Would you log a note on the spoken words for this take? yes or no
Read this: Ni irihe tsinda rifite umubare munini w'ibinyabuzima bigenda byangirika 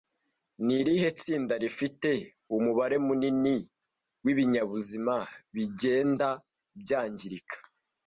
no